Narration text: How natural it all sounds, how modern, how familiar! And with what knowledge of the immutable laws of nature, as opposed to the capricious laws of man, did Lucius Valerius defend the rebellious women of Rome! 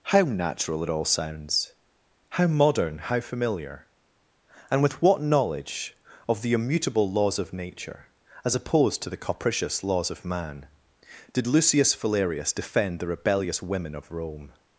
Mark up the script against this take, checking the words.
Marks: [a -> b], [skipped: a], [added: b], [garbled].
How natural it all sounds, how modern, how familiar! And with what knowledge of the immutable laws of nature, as opposed to the capricious laws of man, did Lucius Valerius defend the rebellious women of Rome!